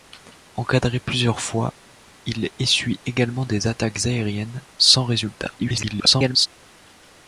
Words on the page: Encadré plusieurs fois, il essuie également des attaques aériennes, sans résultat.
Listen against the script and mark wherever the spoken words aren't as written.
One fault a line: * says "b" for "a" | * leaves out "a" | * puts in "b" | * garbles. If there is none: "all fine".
* garbles